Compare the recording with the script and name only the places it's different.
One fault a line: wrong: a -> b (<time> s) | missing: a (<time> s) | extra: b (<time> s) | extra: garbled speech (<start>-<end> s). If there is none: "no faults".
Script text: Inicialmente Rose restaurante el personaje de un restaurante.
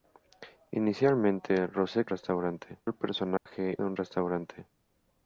no faults